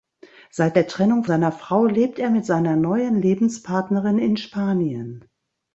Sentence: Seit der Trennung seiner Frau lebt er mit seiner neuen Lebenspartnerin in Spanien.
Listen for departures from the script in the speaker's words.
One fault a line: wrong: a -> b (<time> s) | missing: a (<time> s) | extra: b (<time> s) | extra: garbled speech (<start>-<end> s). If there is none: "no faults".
no faults